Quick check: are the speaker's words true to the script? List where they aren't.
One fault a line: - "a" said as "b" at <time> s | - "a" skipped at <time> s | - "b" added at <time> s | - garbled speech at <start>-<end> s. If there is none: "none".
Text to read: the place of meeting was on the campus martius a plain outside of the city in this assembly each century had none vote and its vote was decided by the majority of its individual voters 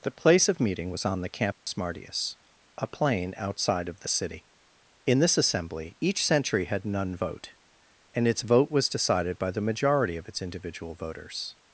none